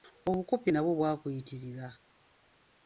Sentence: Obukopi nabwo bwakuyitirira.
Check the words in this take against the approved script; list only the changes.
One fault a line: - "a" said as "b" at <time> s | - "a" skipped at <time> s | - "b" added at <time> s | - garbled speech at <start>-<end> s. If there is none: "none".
none